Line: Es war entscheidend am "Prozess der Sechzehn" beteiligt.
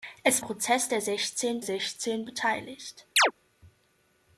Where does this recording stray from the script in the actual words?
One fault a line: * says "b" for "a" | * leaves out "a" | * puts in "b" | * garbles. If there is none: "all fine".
* leaves out "war entscheidend am"
* puts in "Sechzehn"